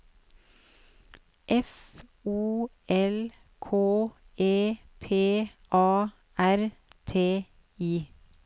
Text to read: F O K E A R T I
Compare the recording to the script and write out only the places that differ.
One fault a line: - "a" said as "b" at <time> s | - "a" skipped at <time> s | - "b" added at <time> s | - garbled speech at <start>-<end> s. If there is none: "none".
- "L" added at 2.9 s
- "P" added at 5.0 s